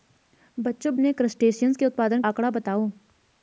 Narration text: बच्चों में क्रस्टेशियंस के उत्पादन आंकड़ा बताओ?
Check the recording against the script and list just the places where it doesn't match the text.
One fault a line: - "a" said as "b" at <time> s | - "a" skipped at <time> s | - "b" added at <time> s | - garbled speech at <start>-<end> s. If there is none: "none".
none